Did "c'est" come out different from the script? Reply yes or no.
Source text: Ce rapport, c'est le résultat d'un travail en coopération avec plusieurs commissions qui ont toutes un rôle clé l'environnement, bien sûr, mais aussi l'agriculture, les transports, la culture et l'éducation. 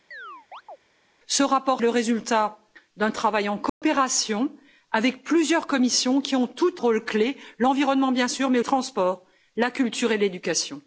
yes